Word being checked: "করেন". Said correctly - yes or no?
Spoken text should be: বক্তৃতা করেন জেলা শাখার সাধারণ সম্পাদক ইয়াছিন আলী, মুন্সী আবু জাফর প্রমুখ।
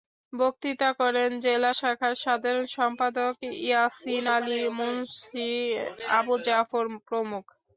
yes